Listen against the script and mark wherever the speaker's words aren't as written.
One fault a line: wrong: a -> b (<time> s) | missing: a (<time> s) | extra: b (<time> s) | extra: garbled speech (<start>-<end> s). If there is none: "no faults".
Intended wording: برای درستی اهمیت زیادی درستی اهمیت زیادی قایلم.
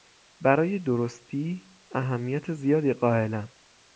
missing: درستی اهمیت زیادی (2.9 s)